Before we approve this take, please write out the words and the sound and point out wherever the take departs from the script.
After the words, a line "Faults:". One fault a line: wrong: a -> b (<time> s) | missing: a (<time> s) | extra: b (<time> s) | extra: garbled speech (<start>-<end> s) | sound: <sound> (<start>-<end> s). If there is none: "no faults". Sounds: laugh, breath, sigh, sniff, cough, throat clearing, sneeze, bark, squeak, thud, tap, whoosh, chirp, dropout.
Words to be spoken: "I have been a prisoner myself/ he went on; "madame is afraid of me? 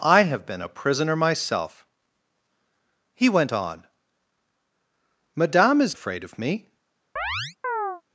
"I have been a prisoner myself/ he went on; "madame is afraid of me?
Faults:
sound: chirp (7.2-8.0 s)